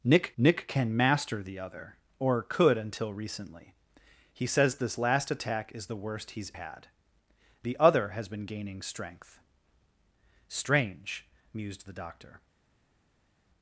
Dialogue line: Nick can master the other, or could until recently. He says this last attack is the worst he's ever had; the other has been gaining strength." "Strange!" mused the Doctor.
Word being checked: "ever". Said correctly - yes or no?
no